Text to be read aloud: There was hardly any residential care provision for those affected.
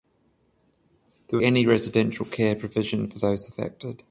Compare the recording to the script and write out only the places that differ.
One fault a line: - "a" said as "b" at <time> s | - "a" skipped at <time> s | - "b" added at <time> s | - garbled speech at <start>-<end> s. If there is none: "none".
- "was hardly" skipped at 1.4 s